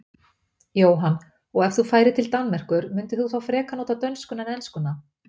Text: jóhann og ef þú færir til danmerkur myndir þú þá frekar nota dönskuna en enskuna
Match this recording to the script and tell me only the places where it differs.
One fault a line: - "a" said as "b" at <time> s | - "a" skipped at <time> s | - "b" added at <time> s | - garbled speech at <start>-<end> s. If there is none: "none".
none